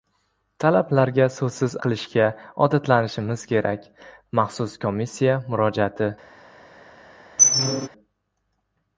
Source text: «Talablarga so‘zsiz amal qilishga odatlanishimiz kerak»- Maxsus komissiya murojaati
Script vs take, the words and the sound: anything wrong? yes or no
yes